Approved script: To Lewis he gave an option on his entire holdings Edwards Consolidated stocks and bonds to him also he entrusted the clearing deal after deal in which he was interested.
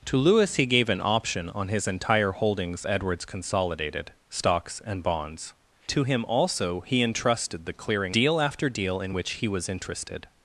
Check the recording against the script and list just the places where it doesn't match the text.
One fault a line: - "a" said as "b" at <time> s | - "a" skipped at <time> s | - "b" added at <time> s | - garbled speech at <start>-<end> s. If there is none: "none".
none